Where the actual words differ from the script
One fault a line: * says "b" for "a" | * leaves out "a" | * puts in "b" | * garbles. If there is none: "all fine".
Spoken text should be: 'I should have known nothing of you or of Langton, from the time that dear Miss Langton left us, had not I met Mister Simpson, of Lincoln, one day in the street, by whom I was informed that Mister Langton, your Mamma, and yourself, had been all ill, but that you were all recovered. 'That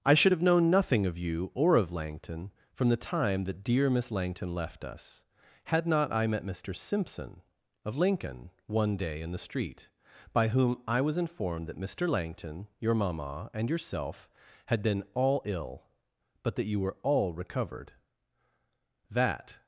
all fine